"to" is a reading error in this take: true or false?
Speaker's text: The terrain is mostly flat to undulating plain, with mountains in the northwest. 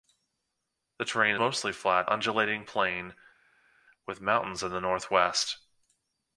true